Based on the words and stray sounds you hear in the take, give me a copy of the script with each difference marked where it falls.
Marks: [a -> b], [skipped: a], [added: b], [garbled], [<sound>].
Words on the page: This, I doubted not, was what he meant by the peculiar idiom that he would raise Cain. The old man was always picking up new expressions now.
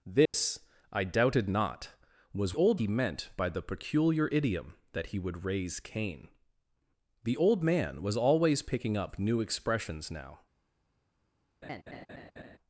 This, [dropout] I doubted not, was [what -> old] he meant by the peculiar idiom that he would raise Cain. The old man was always picking up new expressions now. [laugh]